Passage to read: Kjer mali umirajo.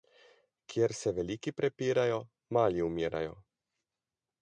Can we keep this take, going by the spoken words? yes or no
no